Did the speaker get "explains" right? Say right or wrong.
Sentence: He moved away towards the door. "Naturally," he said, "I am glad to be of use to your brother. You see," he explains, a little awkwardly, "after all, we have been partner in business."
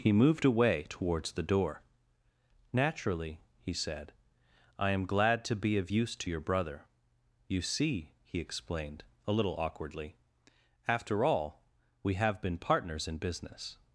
wrong